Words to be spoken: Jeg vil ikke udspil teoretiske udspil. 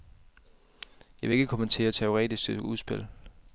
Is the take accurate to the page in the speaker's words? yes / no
no